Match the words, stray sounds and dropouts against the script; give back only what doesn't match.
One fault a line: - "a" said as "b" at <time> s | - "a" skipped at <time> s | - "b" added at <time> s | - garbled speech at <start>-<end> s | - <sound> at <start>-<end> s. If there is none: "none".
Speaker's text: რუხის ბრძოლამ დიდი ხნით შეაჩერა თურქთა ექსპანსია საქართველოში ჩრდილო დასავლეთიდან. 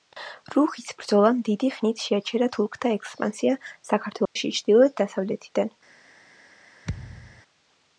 - dropout at 4.3-4.4 s
- thud at 6.8-7.4 s